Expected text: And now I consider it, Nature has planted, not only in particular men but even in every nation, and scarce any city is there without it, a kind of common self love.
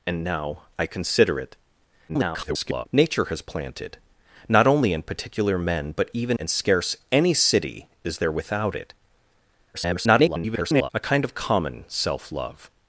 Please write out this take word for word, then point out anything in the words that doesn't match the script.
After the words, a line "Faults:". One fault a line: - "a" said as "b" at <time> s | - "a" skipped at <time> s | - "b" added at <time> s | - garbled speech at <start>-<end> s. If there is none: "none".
And now I consider it, [garbled] Nature has planted, not only in particular men but even and scarce any city is there without it, [garbled] a kind of common self love.
Faults:
- garbled speech at 2.1-2.9 s
- "in every nation" skipped at 6.4 s
- garbled speech at 9.7-10.9 s